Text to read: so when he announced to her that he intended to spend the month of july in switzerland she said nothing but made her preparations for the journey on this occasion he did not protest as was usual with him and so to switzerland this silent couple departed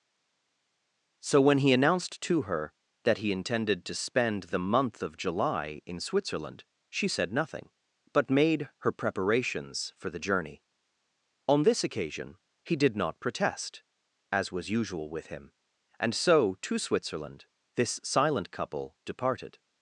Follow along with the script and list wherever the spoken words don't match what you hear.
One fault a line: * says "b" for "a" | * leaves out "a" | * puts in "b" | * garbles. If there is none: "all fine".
all fine